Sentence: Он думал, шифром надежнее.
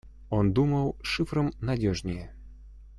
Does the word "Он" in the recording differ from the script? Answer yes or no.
no